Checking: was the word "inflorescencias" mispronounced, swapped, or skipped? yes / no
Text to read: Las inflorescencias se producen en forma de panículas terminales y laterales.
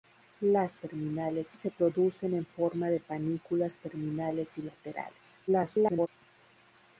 yes